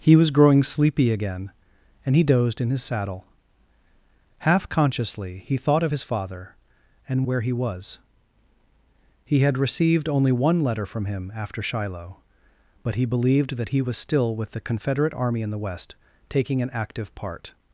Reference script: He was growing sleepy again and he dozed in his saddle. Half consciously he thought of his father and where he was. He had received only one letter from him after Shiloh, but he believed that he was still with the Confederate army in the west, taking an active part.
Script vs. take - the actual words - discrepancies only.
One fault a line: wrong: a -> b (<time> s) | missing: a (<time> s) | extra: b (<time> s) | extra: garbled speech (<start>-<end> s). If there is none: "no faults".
no faults